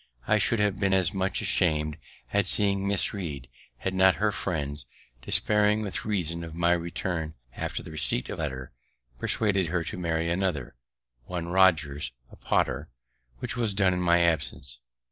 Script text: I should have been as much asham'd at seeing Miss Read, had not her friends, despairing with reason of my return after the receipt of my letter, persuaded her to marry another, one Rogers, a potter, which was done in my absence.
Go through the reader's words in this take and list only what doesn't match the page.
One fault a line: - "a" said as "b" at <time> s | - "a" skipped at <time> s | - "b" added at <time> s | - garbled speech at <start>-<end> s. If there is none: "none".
- "my" skipped at 8.4 s